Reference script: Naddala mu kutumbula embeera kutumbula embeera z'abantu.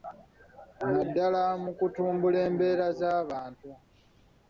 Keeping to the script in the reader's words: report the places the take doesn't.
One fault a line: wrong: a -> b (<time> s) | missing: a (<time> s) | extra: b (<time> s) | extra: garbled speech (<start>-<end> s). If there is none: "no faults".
missing: kutumbula embeera (2.9 s)